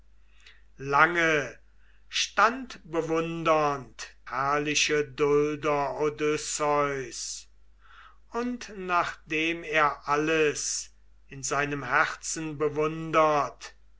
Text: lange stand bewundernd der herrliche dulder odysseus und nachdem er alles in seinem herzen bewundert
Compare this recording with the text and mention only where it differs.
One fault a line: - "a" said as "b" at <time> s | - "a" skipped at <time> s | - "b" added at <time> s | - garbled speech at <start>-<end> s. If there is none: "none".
- "der" skipped at 4.2 s